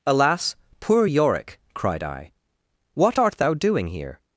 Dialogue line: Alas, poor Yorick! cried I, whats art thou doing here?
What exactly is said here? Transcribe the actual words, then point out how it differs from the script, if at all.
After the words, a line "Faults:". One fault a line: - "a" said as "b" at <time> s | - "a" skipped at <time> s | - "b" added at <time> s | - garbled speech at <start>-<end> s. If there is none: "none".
Alas, poor Yorick! cried I, what art thou doing here?
Faults:
- "whats" said as "what" at 2.9 s